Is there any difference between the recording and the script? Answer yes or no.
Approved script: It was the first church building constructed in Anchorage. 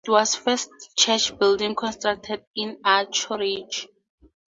no